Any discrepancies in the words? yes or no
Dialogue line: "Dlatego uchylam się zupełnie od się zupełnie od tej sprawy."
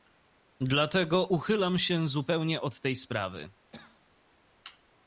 yes